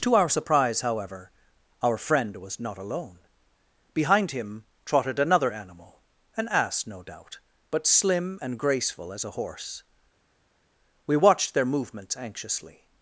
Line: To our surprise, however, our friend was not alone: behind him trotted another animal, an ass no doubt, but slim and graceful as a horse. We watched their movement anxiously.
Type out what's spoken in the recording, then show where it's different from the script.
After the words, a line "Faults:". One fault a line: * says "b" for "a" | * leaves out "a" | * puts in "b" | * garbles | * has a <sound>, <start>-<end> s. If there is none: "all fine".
To our surprise, however, our friend was not alone: behind him trotted another animal, an ass no doubt, but slim and graceful as a horse. We watched their movements anxiously.
Faults:
* says "movements" for "movement"